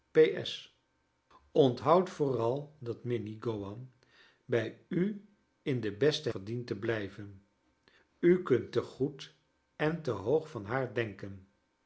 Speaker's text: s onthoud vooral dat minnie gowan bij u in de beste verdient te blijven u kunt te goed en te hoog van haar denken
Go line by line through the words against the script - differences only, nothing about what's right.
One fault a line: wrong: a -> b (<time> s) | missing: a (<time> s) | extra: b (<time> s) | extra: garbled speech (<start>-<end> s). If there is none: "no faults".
no faults